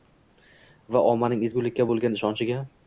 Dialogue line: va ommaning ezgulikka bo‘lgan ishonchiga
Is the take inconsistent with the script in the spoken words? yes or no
no